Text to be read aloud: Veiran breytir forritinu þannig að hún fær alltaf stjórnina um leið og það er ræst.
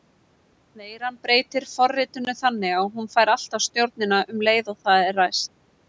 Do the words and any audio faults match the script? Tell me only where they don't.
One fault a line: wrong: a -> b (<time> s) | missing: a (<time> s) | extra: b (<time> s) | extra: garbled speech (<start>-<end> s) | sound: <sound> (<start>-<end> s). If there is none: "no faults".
no faults